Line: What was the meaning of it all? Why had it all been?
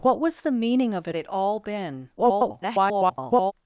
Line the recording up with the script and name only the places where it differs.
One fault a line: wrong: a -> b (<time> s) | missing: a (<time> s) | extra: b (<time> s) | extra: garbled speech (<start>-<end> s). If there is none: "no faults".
missing: all Why had (1.2 s)
extra: garbled speech (2.2-3.5 s)